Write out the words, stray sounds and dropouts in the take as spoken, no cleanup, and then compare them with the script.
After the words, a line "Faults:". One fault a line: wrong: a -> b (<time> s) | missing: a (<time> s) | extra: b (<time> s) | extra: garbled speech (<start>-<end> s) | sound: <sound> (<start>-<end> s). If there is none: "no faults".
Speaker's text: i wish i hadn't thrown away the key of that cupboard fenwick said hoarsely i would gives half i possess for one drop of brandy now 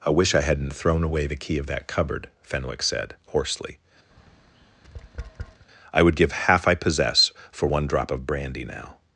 i wish i hadn't thrown away the key of that cupboard fenwick said hoarsely i would give half i possess for one drop of brandy now
Faults:
sound: tap (4.1-5.7 s)
wrong: gives -> give (6.2 s)